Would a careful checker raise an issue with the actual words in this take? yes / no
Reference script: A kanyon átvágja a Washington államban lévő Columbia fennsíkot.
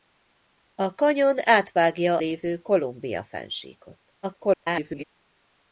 yes